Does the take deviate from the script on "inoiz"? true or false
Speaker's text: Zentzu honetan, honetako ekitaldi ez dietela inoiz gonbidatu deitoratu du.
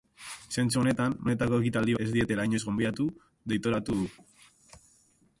false